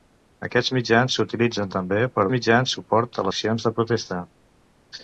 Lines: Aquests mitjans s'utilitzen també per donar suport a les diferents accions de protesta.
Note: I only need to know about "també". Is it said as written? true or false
true